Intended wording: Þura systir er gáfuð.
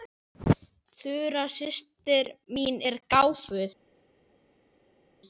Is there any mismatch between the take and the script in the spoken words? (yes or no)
yes